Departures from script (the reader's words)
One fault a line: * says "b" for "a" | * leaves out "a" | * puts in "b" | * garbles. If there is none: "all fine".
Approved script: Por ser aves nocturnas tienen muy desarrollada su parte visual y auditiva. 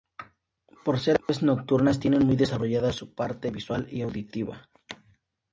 all fine